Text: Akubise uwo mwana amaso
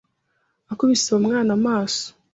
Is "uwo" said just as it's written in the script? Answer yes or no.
yes